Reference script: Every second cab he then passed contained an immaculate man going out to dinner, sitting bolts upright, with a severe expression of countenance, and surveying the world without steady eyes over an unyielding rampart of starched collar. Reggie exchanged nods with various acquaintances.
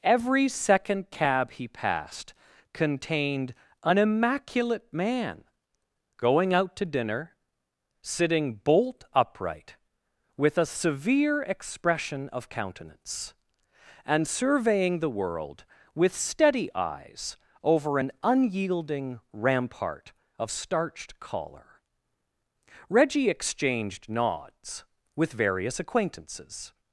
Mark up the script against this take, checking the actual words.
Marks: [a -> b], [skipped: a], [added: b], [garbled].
Every second cab he [skipped: then] passed contained an immaculate man going out to dinner, sitting [bolts -> bolt] upright, with a severe expression of countenance, and surveying the world [without -> with] steady eyes over an unyielding rampart of starched collar. Reggie exchanged nods with various acquaintances.